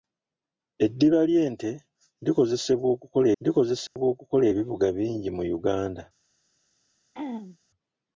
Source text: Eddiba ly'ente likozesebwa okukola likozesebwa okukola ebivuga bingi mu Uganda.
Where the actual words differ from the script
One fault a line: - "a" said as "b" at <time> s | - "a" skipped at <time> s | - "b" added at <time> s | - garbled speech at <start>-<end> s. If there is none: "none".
none